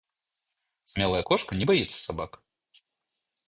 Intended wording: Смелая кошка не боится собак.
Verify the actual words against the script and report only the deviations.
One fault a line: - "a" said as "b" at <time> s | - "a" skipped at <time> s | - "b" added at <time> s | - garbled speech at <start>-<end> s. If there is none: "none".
none